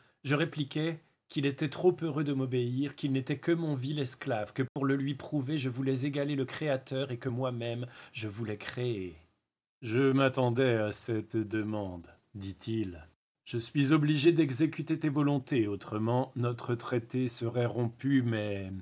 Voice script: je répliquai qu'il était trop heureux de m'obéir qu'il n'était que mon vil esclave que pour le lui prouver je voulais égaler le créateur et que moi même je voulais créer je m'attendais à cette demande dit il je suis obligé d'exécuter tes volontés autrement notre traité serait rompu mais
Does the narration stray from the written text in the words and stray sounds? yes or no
yes